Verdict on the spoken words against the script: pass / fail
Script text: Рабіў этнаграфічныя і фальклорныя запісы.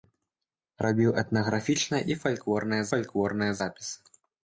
fail